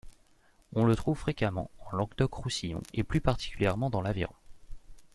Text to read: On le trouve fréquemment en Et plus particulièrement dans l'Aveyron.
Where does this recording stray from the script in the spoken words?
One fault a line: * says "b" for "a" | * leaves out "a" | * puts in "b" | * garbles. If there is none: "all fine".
* puts in "Languedoc Roussillon"